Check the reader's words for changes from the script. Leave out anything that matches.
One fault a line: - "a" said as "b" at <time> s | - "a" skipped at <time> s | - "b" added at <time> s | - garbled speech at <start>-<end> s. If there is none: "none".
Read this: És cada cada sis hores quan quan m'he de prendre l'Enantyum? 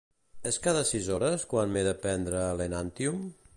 - "cada" skipped at 0.8 s
- "quan" skipped at 1.7 s